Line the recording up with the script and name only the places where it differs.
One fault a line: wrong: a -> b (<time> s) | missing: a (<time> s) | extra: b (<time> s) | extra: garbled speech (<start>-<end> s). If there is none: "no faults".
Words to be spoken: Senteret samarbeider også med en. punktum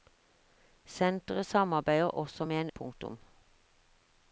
no faults